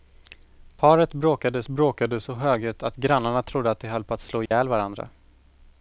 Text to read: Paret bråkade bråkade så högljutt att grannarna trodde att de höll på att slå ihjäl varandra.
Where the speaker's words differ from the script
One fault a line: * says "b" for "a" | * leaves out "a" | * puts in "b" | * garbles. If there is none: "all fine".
all fine